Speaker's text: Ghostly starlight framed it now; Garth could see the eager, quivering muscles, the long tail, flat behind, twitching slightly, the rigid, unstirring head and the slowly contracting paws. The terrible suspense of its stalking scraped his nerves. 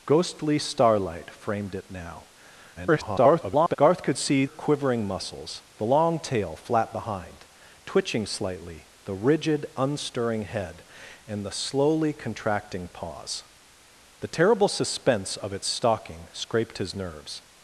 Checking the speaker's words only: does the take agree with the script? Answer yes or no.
no